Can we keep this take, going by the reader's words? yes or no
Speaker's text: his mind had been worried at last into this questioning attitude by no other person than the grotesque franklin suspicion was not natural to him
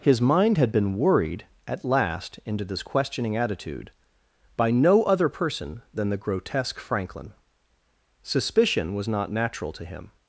yes